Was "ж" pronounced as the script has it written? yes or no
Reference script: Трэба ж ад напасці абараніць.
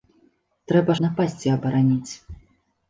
no